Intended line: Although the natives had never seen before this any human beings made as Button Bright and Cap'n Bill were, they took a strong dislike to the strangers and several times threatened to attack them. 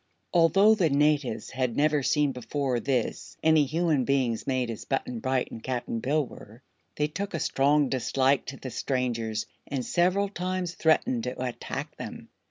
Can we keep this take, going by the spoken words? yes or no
yes